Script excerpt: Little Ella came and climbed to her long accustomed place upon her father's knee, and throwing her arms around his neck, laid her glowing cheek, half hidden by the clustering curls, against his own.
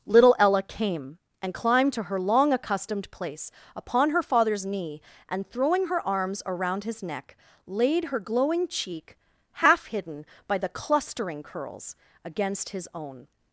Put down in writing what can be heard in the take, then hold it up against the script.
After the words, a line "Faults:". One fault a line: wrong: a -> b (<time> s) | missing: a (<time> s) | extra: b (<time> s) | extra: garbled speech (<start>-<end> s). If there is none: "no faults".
Little Ella came and climbed to her long accustomed place upon her father's knee, and throwing her arms around his neck, laid her glowing cheek, half hidden by the clustering curls, against his own.
Faults:
no faults